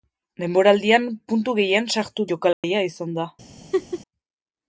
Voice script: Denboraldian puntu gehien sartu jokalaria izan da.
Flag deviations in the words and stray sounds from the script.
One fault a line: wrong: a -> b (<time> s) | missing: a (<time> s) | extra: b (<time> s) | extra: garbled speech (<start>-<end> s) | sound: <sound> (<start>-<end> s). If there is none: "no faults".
sound: dropout (2.5-2.6 s)
sound: laugh (3.7-4.0 s)